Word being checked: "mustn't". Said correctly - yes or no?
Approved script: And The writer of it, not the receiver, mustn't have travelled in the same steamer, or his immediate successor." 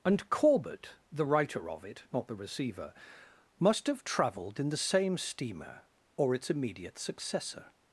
no